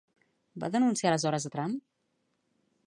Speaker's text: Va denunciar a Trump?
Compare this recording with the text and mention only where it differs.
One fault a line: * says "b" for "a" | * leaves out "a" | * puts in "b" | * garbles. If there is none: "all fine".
* puts in "aleshores"